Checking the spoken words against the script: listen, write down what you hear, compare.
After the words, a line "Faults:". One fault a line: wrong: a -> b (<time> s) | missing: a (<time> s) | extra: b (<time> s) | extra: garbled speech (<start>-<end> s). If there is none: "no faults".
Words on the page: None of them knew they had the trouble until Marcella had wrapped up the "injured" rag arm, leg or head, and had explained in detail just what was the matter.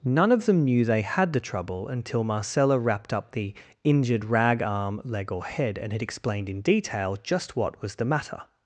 None of them knew they had the trouble until Marcella wrapped up the "injured" rag arm, leg or head, and had explained in detail just what was the matter.
Faults:
missing: had (2.8 s)